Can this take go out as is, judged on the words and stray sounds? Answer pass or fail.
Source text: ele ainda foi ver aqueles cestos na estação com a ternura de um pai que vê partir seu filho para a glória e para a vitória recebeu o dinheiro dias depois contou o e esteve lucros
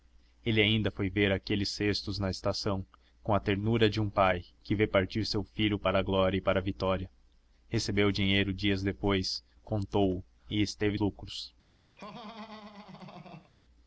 fail